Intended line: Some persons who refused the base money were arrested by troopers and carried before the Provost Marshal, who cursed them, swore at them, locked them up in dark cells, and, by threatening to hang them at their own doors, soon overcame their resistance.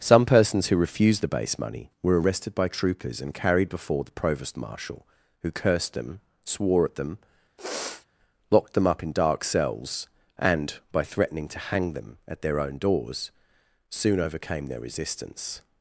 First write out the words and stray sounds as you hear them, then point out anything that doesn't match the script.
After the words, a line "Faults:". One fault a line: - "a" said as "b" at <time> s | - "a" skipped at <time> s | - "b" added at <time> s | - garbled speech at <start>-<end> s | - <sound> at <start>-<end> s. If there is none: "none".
Some persons who refused the base money were arrested by troopers and carried before the Provost Marshal, who cursed them, swore at them, locked them up in dark cells, and, by threatening to hang them at their own doors, soon overcame their resistance.
Faults:
- sniff at 7.6-8.1 s